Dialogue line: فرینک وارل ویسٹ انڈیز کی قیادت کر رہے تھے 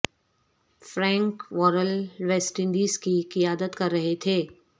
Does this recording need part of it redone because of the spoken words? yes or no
no